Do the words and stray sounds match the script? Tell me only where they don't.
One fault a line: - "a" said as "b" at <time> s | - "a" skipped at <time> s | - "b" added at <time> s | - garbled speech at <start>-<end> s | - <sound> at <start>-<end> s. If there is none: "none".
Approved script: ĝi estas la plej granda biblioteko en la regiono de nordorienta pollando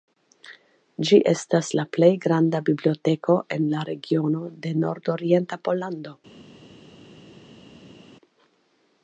none